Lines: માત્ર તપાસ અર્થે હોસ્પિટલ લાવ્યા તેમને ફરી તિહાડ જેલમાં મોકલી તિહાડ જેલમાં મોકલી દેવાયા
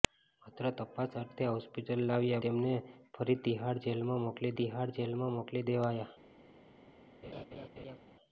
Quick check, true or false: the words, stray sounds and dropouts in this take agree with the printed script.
false